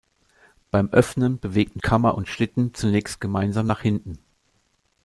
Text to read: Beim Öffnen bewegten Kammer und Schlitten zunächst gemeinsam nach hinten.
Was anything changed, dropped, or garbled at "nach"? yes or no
no